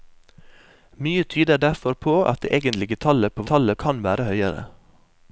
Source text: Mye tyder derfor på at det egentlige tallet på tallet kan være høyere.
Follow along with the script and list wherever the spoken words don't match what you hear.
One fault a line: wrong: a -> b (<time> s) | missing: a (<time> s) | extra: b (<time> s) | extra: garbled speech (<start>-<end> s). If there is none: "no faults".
no faults